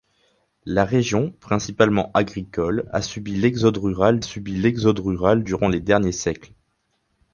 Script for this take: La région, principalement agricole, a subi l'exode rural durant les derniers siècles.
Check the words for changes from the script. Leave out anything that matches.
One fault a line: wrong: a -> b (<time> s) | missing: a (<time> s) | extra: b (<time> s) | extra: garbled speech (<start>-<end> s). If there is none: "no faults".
extra: subi l'exode rural (4.2 s)